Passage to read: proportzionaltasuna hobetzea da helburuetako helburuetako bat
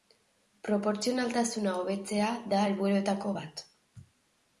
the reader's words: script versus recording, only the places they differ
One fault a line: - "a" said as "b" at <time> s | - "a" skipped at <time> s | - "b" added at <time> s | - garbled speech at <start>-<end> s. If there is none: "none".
- "helburuetako" skipped at 3.3 s